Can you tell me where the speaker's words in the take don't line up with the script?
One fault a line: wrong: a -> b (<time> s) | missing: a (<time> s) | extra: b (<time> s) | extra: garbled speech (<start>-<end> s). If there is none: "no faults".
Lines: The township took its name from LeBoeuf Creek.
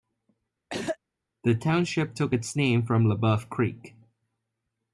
no faults